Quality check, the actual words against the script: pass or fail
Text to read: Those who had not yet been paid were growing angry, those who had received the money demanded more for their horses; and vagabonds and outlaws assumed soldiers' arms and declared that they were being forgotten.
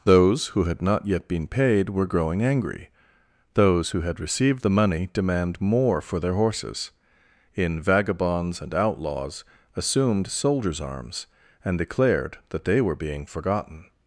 fail